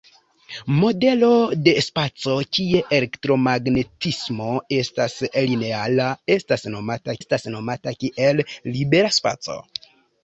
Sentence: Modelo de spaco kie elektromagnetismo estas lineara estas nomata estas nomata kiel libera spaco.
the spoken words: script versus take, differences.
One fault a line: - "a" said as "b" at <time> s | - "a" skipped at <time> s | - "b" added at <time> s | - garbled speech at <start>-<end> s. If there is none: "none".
none